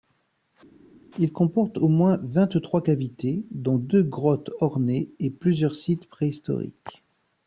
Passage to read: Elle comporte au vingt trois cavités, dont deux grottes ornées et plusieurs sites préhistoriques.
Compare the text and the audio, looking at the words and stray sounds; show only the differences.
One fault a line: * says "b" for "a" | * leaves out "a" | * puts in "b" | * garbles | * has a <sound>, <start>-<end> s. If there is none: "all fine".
* says "Il" for "Elle"
* puts in "moins"